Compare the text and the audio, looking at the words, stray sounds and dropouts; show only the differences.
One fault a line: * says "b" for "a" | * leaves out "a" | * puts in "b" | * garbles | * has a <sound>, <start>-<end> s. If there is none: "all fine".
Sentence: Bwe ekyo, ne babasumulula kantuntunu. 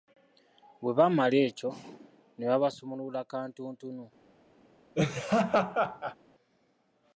* puts in "baamala"
* has a laugh, 4.9-6.2 s